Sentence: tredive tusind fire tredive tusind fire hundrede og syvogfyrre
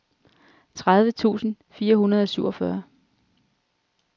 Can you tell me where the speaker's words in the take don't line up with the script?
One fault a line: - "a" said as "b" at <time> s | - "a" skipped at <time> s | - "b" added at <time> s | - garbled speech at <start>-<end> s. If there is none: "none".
- "tredive tusind fire" skipped at 1.9 s